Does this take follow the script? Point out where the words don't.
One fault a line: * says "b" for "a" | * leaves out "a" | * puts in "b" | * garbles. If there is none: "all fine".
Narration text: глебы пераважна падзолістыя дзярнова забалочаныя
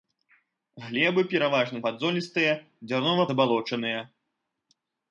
all fine